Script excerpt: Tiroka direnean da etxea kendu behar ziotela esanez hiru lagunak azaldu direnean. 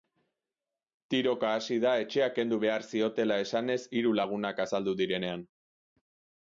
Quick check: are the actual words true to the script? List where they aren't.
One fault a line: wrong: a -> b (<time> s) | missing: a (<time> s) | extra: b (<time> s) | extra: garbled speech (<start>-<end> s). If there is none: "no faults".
wrong: direnean -> hasi (1.6 s)